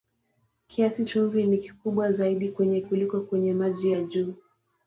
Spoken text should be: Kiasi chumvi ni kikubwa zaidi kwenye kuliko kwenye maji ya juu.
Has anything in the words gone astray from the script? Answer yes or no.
no